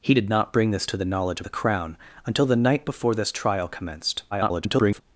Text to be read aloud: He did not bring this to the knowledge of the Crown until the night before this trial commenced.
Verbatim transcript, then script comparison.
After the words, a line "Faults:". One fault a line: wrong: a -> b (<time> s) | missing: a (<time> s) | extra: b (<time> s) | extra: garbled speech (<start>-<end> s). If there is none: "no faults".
He did not bring this to the knowledge the Crown until the night before this trial commenced. [garbled]
Faults:
missing: of (1.4 s)
extra: garbled speech (4.3-5.0 s)